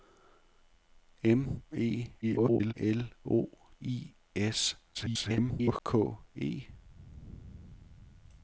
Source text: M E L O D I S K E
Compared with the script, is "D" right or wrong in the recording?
wrong